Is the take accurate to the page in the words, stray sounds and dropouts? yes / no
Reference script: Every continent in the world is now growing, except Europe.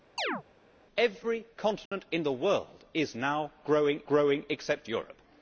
no